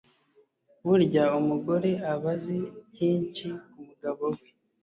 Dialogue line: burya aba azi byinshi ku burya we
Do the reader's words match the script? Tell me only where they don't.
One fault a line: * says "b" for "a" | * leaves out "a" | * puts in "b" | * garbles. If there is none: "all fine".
* puts in "umugore"
* says "mugabo" for "burya"